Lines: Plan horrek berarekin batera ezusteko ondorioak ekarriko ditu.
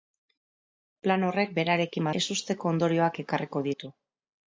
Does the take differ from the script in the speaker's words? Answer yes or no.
yes